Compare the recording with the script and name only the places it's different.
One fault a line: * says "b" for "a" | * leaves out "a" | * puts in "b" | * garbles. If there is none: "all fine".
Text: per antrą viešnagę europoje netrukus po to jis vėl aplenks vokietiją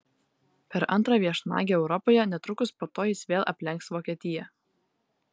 all fine